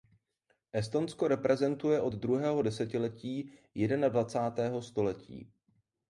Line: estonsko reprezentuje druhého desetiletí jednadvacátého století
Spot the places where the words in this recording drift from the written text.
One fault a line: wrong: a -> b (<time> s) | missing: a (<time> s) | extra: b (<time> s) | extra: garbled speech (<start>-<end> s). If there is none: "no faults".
extra: od (2.0 s)